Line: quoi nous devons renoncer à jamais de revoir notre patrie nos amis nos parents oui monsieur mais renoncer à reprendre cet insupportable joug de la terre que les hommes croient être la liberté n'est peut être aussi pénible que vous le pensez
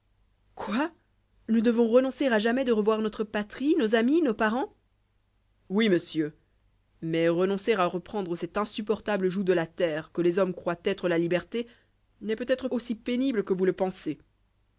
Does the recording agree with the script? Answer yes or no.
yes